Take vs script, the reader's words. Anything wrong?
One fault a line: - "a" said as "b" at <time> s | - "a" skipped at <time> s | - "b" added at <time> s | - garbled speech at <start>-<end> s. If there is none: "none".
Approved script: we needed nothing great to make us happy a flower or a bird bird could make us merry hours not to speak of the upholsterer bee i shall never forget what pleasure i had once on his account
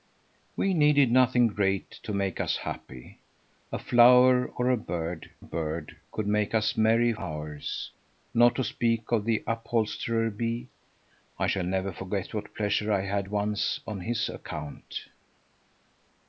none